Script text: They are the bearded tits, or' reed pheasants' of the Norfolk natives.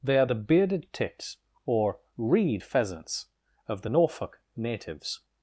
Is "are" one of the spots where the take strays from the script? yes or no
no